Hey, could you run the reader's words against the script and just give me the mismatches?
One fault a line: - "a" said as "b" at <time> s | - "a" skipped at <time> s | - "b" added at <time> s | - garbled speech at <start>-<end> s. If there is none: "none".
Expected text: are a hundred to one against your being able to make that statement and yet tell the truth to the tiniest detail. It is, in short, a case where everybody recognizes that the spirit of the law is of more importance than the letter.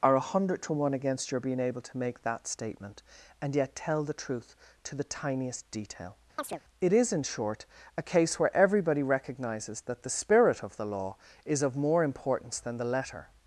none